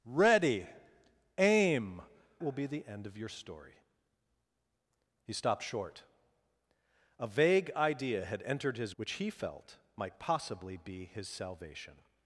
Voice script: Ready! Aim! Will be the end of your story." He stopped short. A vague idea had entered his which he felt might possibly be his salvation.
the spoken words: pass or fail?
pass